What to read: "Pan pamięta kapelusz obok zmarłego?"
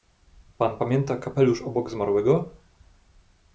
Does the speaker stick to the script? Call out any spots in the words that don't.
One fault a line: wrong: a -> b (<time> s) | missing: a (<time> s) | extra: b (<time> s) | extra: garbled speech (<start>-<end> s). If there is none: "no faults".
no faults